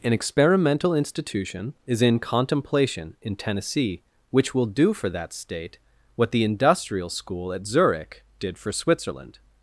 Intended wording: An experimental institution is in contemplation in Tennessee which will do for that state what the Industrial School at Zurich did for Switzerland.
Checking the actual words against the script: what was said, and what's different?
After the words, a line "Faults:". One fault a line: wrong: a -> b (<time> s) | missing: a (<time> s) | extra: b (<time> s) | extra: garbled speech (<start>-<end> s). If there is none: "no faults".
An experimental institution is in contemplation in Tennessee which will do for that state what the Industrial School at Zurich did for Switzerland.
Faults:
no faults